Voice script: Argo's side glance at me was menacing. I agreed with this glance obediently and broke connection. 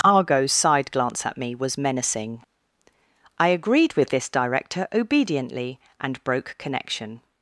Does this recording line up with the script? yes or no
no